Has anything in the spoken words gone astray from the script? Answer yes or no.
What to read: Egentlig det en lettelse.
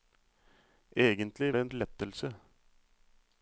no